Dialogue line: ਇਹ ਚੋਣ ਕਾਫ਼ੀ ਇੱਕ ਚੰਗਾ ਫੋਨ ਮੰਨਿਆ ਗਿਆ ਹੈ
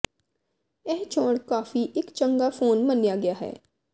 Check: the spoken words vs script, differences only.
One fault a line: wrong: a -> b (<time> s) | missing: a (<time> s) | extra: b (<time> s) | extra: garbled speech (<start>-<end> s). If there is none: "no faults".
no faults